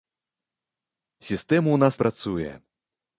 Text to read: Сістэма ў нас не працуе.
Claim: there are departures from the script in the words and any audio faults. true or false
true